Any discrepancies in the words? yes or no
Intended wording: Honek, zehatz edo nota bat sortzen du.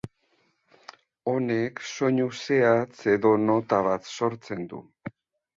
yes